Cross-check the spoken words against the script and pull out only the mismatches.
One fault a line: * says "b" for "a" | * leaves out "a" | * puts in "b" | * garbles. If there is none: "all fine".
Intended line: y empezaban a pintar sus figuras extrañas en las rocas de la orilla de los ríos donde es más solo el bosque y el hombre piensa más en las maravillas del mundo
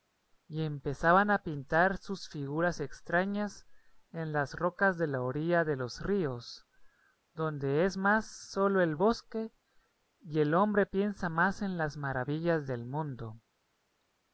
all fine